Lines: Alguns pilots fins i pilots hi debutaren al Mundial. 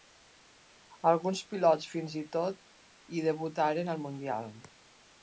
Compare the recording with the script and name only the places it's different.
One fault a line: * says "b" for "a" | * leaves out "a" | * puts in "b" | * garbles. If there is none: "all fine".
* says "tot" for "pilots"